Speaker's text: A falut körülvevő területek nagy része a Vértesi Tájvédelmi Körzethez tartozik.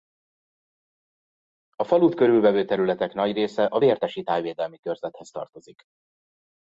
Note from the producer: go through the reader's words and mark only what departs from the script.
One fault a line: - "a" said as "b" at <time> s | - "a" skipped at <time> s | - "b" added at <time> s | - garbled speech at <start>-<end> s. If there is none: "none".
none